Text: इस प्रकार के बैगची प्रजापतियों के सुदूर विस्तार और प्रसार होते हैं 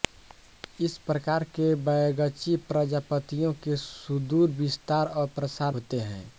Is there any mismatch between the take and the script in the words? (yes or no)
no